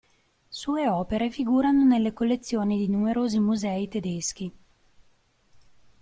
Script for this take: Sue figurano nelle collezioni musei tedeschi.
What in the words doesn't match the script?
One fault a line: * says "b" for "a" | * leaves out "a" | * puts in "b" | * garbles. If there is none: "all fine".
* puts in "opere"
* puts in "di numerosi"